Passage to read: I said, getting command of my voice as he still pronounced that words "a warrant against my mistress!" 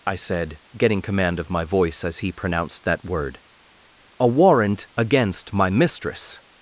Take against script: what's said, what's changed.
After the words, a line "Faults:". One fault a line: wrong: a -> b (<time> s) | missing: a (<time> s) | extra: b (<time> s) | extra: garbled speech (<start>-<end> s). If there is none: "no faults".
I said, getting command of my voice as he pronounced that word "a warrant against my mistress!"
Faults:
missing: still (2.3 s)
wrong: words -> word (3.0 s)